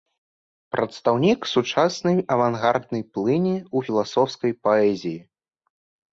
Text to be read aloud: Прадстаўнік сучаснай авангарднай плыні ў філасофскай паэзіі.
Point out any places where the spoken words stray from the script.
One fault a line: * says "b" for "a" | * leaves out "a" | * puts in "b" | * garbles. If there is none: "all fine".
all fine